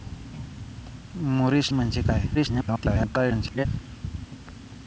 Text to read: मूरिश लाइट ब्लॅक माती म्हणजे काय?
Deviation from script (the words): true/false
true